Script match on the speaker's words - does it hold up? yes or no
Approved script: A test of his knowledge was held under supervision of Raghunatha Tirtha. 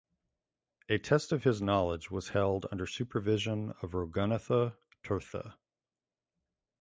yes